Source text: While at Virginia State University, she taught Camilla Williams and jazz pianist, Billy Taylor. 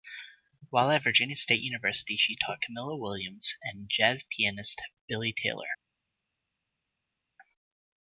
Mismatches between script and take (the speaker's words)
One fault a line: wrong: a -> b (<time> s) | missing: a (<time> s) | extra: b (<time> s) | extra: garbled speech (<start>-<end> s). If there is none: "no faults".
no faults